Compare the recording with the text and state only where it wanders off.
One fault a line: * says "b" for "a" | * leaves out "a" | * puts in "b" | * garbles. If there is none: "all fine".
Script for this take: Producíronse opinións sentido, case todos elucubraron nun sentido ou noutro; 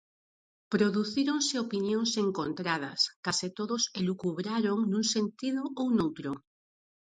* says "encontradas" for "sentido"